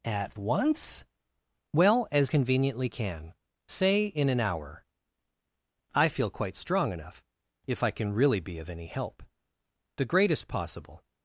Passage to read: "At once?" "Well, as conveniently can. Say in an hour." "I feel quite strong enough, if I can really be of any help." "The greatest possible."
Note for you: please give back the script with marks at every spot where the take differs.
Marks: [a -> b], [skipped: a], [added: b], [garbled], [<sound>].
"At once?" "Well, as conveniently can. Say in an hour." "I feel quite strong enough, if I can really be of any help." "The greatest possible."